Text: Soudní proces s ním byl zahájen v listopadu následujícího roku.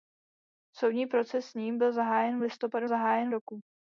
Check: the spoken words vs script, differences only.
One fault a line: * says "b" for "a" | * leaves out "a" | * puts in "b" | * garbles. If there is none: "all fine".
* says "zahájen" for "následujícího"